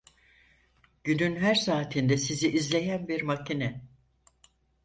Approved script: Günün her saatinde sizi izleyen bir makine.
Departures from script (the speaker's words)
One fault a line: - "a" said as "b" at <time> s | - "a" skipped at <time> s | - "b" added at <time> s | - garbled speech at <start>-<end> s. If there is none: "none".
none